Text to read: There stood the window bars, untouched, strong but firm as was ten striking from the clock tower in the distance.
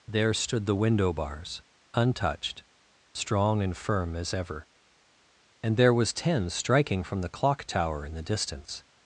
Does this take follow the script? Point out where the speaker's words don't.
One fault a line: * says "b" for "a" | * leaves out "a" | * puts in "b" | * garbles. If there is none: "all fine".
* says "and" for "but"
* puts in "ever And there"